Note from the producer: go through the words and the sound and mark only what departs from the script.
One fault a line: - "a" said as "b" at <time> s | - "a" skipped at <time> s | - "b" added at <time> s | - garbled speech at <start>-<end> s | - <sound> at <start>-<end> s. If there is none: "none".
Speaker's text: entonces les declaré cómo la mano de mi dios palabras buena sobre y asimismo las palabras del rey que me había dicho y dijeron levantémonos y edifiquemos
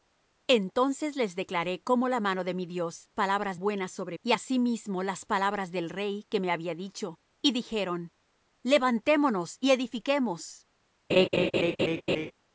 - laugh at 11.1-12.3 s